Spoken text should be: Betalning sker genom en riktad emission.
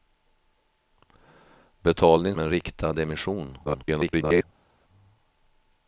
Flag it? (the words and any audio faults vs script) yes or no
yes